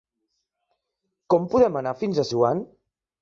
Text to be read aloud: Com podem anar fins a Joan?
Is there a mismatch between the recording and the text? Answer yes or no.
no